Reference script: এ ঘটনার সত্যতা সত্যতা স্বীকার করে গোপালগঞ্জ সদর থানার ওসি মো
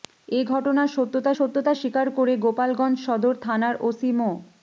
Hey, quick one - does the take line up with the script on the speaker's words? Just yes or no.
yes